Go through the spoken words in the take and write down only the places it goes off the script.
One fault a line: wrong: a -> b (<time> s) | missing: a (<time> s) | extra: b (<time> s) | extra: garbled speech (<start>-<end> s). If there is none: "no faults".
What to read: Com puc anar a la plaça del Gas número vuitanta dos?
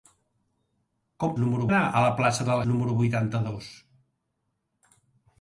wrong: puc -> número (1.4 s)
missing: Gas (2.6 s)